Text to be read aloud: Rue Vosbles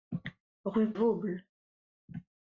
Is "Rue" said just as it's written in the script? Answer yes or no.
yes